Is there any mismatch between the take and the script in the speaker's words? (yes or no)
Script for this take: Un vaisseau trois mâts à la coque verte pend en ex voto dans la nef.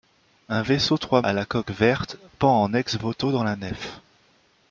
yes